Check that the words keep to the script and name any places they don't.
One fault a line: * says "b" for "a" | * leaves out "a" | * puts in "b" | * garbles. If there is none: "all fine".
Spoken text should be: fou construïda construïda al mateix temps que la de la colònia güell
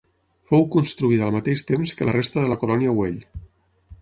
* leaves out "construïda"
* puts in "resta"